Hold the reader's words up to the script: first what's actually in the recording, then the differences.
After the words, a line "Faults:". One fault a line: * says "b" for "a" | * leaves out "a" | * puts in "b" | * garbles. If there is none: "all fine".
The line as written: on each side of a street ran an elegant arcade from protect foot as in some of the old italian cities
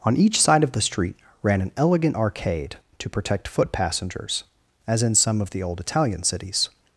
on each side of the street ran an elegant arcade to protect foot passengers as in some of the old italian cities
Faults:
* says "the" for "a"
* says "to" for "from"
* puts in "passengers"